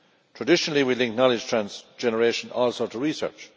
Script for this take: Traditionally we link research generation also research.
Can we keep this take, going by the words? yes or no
no